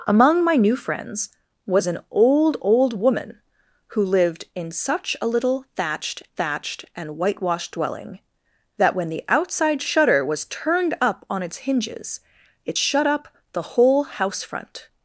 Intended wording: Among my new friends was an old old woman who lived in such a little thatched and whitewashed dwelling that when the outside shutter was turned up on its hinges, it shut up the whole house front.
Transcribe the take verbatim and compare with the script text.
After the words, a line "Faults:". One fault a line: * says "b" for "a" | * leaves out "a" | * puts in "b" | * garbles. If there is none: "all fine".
Among my new friends was an old old woman who lived in such a little thatched thatched and whitewashed dwelling that when the outside shutter was turned up on its hinges, it shut up the whole house front.
Faults:
* puts in "thatched"